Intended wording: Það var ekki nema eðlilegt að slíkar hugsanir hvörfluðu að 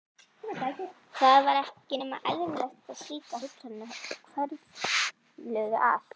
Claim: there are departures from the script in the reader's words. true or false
false